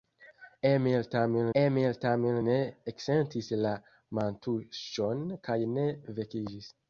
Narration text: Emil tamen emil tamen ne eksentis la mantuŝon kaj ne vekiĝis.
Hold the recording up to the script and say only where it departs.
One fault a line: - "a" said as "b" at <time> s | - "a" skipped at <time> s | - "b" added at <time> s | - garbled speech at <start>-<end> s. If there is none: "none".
none